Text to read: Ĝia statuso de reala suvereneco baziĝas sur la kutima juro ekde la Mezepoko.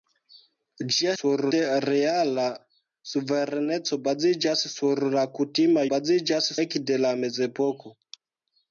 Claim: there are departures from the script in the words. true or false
true